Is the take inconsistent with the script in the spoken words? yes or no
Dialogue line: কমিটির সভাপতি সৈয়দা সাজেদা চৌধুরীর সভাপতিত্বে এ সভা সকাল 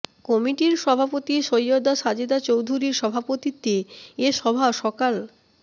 no